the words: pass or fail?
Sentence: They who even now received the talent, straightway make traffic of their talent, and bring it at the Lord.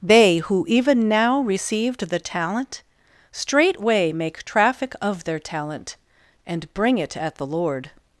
pass